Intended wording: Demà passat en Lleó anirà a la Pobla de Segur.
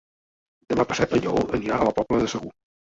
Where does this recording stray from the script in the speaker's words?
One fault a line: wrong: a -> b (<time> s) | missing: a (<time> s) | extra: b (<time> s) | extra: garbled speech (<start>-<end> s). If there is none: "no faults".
no faults